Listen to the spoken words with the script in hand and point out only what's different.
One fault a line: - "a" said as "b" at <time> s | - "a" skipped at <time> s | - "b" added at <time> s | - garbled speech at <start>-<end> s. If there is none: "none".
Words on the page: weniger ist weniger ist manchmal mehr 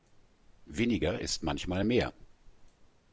- "weniger ist" skipped at 1.4 s